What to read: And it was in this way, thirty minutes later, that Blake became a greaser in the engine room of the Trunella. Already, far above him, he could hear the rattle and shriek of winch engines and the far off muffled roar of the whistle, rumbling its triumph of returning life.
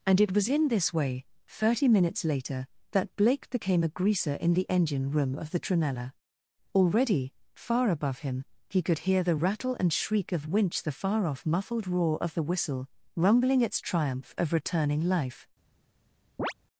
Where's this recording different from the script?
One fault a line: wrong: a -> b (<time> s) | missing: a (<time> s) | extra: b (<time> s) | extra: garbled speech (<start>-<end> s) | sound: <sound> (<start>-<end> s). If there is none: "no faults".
missing: engines and (10.8 s)
sound: chirp (16.4-16.5 s)